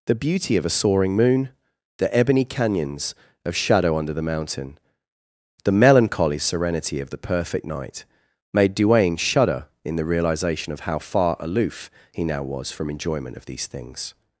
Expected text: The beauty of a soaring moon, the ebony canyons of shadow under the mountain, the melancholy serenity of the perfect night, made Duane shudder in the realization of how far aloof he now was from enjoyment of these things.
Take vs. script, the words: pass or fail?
pass